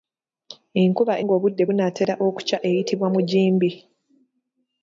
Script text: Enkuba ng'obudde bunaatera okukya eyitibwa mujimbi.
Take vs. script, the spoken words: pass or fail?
pass